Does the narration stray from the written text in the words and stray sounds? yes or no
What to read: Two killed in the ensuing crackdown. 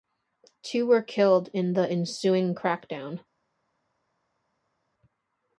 yes